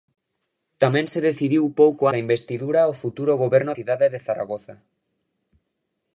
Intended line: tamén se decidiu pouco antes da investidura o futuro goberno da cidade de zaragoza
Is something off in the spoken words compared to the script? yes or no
yes